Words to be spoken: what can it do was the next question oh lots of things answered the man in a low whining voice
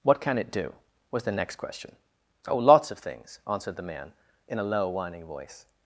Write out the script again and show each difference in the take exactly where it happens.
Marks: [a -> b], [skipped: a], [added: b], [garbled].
what can it do was the next question oh lots of things answered the man in a low whining voice